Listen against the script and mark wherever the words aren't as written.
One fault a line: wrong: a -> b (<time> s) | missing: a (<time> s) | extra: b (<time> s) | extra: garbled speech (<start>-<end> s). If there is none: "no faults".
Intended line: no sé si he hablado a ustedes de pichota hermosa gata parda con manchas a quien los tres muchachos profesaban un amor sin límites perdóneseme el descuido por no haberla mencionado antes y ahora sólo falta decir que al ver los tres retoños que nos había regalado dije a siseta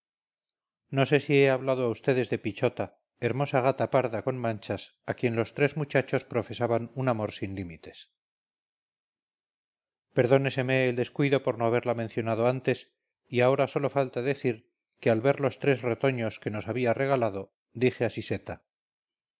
no faults